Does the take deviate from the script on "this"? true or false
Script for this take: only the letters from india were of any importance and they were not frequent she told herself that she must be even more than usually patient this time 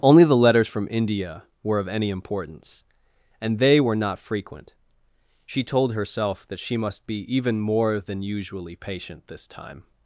false